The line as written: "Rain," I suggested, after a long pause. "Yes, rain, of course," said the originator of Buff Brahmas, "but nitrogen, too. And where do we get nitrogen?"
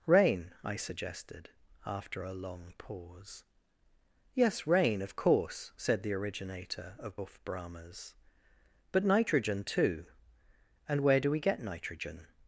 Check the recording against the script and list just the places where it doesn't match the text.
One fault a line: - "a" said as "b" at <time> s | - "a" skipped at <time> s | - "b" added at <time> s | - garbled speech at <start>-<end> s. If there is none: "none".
none